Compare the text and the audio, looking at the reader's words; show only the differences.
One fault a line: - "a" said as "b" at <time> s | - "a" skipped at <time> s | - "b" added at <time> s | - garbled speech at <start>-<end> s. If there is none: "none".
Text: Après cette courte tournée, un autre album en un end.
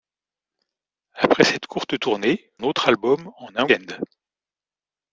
none